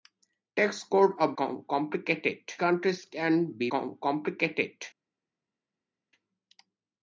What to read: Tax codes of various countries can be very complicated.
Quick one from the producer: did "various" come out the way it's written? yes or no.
no